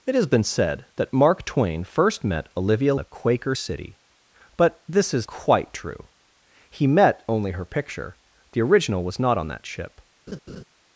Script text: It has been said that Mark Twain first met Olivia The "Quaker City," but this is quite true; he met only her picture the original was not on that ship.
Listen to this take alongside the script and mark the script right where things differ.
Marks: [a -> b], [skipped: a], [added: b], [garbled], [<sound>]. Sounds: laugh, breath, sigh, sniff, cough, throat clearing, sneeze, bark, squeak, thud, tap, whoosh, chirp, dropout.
It has been said that Mark Twain first met Olivia The "Quaker City," but this is quite true; he met only her picture the original was not on that ship. [laugh]